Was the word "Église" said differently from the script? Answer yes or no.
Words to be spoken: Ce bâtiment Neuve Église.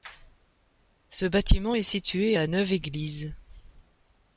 no